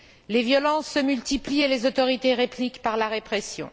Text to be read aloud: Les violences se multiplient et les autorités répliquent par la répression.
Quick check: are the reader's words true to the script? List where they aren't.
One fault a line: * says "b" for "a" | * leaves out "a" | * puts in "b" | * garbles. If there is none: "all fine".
all fine